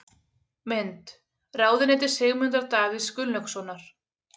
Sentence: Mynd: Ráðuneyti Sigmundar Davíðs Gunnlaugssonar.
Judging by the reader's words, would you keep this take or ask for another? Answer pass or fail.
pass